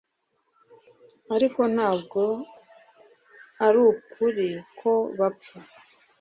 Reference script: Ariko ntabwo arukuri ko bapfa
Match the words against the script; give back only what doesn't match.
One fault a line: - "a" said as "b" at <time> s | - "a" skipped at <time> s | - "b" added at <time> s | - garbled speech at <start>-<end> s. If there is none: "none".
none